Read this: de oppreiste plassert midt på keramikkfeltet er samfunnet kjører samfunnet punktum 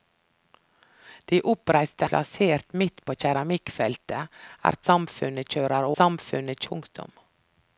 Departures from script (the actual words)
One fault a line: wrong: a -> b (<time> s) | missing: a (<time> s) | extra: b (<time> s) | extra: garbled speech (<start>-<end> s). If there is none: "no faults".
no faults